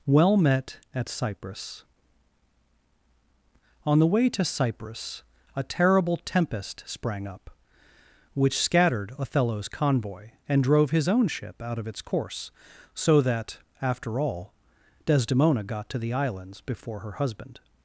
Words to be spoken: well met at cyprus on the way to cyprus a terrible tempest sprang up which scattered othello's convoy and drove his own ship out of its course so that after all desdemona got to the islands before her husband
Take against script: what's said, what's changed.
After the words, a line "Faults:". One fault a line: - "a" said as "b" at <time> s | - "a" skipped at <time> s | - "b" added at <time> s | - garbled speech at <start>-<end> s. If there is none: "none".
well met at cyprus on the way to cyprus a terrible tempest sprang up which scattered othello's convoy and drove his own ship out of its course so that after all desdemona got to the islands before her husband
Faults:
none